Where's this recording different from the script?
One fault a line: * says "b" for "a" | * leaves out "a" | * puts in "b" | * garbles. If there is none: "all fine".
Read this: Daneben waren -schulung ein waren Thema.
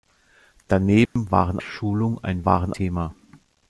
all fine